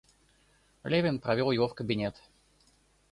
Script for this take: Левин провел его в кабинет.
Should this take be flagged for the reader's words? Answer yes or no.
no